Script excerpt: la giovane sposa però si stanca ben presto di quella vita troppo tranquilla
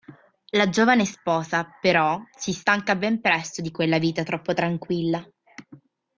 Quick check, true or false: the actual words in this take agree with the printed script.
true